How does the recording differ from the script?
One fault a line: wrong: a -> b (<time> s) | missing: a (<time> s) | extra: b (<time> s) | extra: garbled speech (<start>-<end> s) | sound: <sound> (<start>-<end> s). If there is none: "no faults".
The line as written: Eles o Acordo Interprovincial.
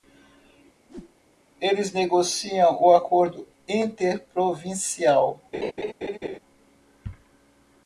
sound: whoosh (0.9-1.2 s)
extra: negociam (1.9 s)
sound: laugh (5.5-6.4 s)